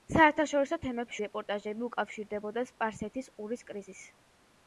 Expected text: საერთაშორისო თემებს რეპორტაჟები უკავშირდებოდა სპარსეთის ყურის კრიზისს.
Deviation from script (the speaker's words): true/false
false